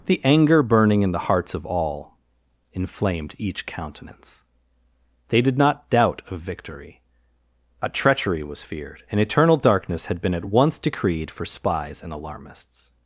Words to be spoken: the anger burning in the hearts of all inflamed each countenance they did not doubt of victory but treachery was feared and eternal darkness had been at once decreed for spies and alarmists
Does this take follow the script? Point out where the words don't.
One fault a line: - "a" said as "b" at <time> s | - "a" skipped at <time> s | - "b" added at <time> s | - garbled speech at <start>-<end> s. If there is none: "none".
- "but" said as "a" at 7.8 s